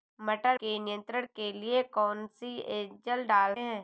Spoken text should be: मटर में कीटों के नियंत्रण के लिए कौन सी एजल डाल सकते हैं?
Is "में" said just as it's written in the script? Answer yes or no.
no